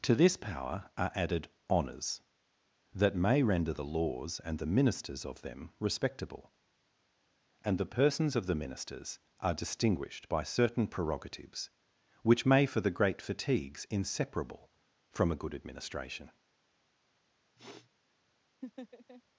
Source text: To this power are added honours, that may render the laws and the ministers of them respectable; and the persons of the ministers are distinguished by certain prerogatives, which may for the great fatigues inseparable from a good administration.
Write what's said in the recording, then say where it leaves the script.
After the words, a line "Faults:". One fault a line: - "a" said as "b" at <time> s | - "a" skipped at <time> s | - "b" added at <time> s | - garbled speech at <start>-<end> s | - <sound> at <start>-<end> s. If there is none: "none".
To this power are added honours, that may render the laws and the ministers of them respectable; and the persons of the ministers are distinguished by certain prerogatives, which may for the great fatigues inseparable from a good administration.
Faults:
- sniff at 17.6-17.9 s
- laugh at 18.6-19.2 s